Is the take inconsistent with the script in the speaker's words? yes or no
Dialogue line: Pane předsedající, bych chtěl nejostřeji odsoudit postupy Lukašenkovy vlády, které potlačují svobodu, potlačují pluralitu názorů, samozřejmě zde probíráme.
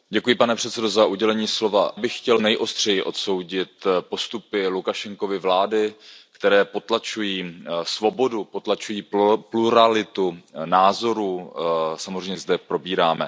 no